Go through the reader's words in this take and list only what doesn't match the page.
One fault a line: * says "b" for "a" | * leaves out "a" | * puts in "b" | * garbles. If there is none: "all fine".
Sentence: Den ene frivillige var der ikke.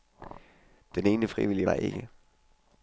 * leaves out "var"